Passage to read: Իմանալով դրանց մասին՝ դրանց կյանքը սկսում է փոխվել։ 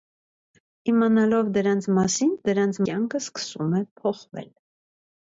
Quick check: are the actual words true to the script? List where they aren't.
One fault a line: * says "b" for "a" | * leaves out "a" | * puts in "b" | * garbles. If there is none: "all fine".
all fine